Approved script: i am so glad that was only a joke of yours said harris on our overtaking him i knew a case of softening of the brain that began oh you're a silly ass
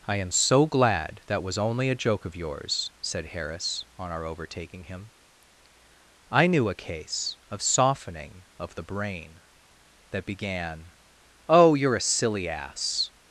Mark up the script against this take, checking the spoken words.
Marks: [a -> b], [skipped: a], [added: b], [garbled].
i am so glad that was only a joke of yours said harris on our overtaking him i knew a case of softening of the brain that began oh you're a silly ass